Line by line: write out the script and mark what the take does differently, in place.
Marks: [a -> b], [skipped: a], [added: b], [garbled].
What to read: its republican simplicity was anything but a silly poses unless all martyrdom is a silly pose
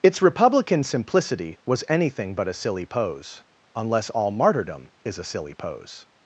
its republican simplicity was anything but a silly [poses -> pose] unless all martyrdom is a silly pose